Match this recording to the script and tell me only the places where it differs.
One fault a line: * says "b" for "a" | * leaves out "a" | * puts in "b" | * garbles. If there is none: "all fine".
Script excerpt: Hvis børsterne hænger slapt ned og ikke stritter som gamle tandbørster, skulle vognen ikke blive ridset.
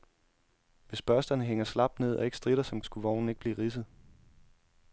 * leaves out "gamle tandbørster"